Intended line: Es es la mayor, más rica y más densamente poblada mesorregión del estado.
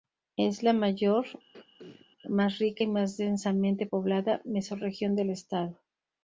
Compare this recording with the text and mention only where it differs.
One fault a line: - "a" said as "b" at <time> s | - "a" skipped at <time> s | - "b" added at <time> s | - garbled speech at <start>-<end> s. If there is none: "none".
- "es" skipped at 0.6 s